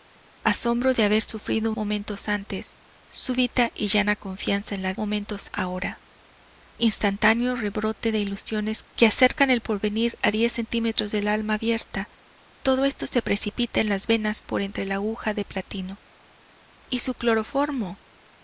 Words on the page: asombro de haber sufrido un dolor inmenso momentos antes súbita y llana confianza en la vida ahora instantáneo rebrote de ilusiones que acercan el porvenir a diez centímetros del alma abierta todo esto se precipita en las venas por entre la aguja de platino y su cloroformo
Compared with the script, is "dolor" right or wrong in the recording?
wrong